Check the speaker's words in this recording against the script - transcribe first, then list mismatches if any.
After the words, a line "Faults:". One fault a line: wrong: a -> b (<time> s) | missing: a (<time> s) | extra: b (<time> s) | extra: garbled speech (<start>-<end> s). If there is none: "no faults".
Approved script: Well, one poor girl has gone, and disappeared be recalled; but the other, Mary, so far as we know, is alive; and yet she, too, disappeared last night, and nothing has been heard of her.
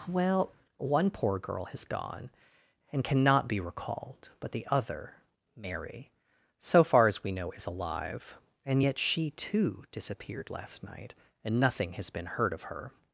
Well, one poor girl has gone, and cannot be recalled; but the other, Mary, so far as we know, is alive; and yet she, too, disappeared last night, and nothing has been heard of her.
Faults:
wrong: disappeared -> cannot (3.0 s)